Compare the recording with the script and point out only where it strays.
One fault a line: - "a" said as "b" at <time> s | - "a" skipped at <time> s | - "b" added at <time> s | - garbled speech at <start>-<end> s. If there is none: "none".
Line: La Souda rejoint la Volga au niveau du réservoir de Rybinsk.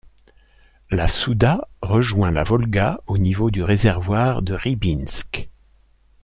none